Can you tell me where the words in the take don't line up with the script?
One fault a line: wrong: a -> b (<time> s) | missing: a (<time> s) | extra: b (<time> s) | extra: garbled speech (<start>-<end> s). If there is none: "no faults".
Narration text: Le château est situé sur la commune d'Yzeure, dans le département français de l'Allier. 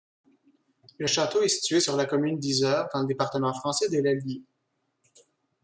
no faults